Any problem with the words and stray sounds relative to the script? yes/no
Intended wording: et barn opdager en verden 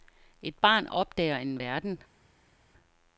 no